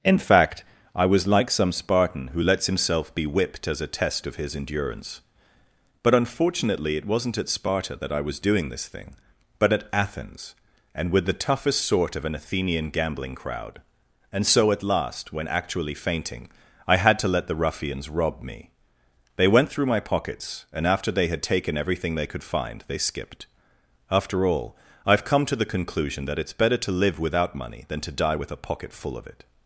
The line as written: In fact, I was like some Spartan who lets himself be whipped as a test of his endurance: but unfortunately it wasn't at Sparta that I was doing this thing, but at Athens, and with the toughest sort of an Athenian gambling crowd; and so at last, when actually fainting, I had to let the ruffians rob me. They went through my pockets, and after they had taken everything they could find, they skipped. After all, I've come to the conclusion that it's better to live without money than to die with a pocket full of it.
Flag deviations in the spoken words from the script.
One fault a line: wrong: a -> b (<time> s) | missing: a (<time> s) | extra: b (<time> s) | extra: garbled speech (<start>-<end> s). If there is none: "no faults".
no faults